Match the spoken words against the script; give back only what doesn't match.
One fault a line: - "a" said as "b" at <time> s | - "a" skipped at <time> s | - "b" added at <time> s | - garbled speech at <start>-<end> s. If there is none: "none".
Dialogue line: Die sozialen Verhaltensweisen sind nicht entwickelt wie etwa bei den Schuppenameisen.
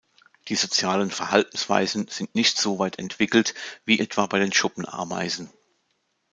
- "so weit" added at 2.6 s